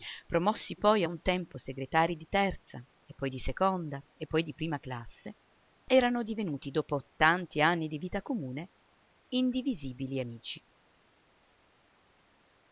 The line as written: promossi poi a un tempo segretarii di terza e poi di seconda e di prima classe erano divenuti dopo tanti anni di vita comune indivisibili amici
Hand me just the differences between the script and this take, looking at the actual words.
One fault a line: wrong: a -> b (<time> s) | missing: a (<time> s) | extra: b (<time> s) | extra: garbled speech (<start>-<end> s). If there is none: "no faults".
extra: poi (4.3 s)